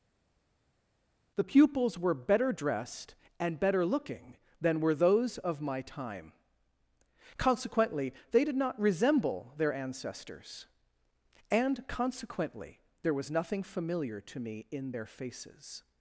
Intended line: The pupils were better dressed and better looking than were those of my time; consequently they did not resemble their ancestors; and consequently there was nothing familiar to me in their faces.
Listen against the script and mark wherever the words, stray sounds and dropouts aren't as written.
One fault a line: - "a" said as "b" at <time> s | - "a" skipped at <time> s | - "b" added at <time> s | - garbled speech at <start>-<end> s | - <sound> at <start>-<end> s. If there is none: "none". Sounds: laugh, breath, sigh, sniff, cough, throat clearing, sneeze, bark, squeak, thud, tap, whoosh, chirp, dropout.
none